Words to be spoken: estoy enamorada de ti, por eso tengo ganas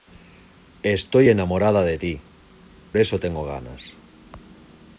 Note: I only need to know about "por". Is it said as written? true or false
false